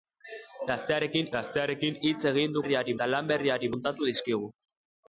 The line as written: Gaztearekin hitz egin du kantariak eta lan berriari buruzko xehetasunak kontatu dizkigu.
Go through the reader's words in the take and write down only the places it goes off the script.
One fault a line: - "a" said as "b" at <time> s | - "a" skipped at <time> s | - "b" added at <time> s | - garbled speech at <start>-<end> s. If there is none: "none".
- "gaztearekin" added at 1.3 s
- "kantariak" said as "berriari" at 2.6 s
- "buruzko xehetasunak" skipped at 3.7 s